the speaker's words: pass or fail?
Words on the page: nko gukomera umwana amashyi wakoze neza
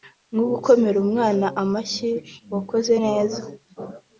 pass